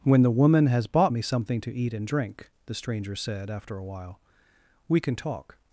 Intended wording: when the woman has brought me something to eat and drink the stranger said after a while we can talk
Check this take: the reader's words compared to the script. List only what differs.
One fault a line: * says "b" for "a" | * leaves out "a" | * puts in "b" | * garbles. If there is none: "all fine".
* says "bought" for "brought"